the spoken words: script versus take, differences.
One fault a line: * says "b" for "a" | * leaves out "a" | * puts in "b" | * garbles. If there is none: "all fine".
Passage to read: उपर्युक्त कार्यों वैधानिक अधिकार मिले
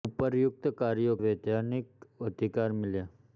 all fine